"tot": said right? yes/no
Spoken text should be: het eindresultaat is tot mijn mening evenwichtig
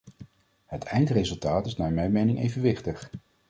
no